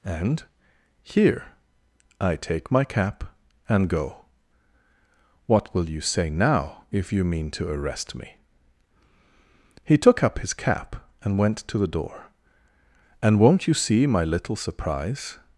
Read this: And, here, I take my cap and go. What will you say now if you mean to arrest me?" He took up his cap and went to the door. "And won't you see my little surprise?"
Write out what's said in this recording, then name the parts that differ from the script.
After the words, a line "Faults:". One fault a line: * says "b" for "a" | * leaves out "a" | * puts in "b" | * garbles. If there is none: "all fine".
And, here, I take my cap and go. What will you say now if you mean to arrest me?" He took up his cap and went to the door. "And won't you see my little surprise?"
Faults:
all fine